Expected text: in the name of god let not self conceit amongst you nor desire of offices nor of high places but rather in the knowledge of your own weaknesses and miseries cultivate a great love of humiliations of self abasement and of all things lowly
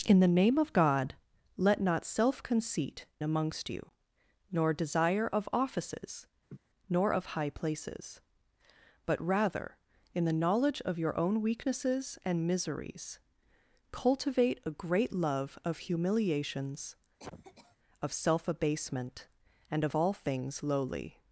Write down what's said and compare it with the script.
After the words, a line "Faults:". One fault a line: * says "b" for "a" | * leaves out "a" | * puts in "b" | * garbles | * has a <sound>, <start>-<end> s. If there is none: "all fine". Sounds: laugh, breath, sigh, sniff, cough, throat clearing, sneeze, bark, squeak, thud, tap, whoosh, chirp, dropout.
in the name of god let not self conceit amongst you nor desire of offices nor of high places but rather in the knowledge of your own weaknesses and miseries cultivate a great love of humiliations of self abasement and of all things lowly
Faults:
* has a laugh, 6.5-6.6 s
* has a cough, 17.2-17.8 s